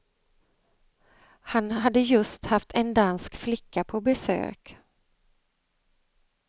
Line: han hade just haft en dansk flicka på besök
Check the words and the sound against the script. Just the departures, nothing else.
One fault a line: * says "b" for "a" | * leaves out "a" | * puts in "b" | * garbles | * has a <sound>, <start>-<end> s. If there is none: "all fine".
all fine